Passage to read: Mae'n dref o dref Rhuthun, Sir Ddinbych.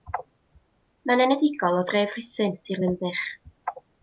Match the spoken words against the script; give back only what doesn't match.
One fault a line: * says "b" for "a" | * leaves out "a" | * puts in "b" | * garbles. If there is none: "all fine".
* says "enedigol" for "dref"